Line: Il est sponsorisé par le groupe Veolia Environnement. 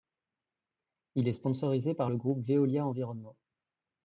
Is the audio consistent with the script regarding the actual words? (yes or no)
yes